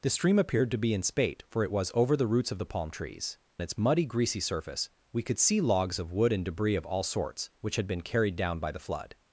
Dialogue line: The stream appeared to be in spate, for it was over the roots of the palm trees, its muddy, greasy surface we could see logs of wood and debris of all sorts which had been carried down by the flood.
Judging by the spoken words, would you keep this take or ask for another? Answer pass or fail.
pass